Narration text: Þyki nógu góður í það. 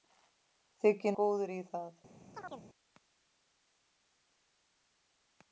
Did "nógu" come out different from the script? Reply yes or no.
yes